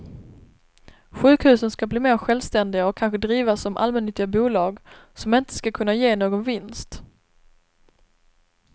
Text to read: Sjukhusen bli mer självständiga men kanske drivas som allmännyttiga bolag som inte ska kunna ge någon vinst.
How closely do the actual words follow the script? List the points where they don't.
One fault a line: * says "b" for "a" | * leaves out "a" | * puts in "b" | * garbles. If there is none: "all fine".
* puts in "ska"
* says "och" for "men"